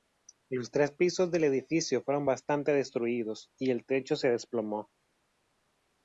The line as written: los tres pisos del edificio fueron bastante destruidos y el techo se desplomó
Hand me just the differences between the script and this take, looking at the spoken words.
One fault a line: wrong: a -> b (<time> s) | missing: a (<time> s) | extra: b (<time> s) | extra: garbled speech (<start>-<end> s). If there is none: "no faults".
no faults